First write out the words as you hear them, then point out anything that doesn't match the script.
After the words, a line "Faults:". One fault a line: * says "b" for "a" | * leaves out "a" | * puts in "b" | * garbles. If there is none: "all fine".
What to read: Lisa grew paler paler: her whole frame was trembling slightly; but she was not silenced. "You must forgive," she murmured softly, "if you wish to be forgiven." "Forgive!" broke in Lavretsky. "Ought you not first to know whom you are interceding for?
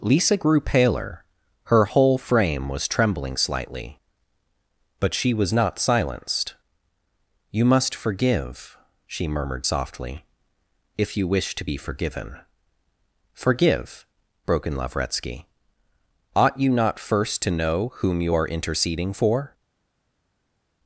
Lisa grew paler: her whole frame was trembling slightly; but she was not silenced. "You must forgive," she murmured softly, "if you wish to be forgiven." "Forgive!" broke in Lavretsky. "Ought you not first to know whom you are interceding for?
Faults:
* leaves out "paler"